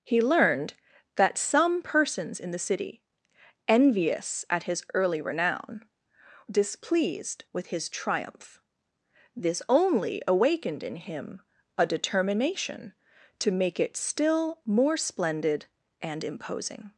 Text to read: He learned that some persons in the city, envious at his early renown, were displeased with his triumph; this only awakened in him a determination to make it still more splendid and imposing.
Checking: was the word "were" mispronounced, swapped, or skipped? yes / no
yes